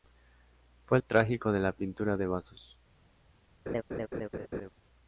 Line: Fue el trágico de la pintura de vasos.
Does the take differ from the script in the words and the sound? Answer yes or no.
yes